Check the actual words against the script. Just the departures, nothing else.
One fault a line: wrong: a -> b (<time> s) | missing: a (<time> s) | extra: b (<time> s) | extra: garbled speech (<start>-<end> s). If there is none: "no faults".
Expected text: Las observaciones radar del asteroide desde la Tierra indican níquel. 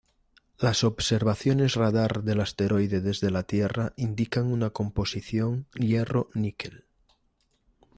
extra: una composición hierro (4.5 s)